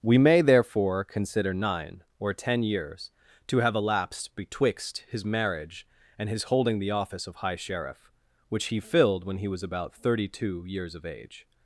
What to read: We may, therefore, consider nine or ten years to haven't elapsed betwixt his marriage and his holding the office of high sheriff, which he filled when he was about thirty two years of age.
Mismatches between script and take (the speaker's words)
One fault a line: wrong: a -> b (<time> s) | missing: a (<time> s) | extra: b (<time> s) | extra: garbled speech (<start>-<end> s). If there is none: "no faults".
wrong: haven't -> have (3.6 s)